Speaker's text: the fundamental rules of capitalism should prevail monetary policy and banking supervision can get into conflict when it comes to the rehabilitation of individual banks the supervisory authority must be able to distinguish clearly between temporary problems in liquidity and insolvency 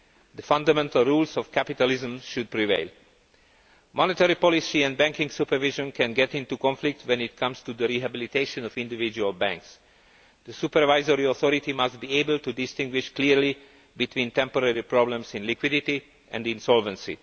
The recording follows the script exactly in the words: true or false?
true